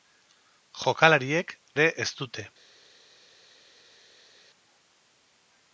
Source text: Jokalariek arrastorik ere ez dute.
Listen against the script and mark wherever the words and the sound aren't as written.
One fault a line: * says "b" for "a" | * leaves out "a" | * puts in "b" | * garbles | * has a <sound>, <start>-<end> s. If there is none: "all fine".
* leaves out "arrastorik"